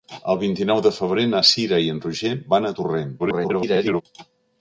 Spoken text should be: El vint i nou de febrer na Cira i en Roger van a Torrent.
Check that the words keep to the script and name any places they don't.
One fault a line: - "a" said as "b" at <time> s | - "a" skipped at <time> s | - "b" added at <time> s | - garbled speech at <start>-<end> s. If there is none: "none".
- garbled speech at 3.2-4.0 s